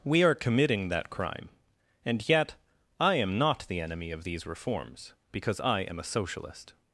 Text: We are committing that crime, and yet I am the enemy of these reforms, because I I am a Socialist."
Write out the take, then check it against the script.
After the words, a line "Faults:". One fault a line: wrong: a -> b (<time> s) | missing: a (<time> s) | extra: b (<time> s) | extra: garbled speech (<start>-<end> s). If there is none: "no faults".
We are committing that crime, and yet I am not the enemy of these reforms, because I am a Socialist."
Faults:
extra: not (3.4 s)
missing: I (5.8 s)